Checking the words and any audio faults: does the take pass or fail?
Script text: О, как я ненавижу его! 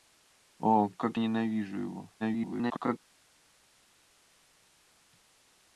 fail